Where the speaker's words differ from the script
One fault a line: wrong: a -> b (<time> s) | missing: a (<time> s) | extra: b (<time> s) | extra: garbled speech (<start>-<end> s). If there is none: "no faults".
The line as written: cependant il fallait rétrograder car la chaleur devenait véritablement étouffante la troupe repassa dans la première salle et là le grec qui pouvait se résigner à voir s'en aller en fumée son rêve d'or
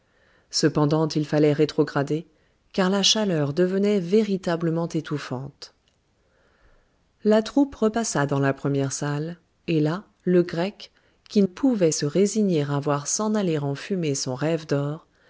no faults